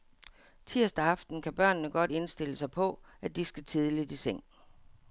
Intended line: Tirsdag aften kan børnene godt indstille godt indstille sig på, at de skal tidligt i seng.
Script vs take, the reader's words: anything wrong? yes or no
yes